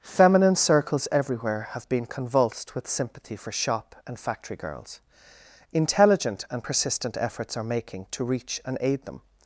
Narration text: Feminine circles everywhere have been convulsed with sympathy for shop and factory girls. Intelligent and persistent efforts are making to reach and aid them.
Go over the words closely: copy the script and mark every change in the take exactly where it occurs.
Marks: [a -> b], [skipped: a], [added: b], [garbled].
Feminine circles everywhere have been convulsed with sympathy for shop and factory girls. Intelligent and persistent efforts are making to reach and aid them.